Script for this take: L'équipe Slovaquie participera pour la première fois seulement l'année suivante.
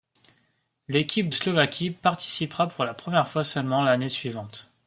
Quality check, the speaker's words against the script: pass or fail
pass